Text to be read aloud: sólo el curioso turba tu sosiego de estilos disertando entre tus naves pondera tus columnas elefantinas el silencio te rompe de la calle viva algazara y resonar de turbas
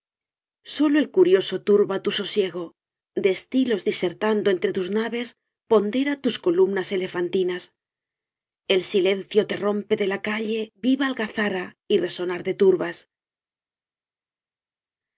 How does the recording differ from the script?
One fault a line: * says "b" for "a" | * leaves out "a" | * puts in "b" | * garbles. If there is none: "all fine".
all fine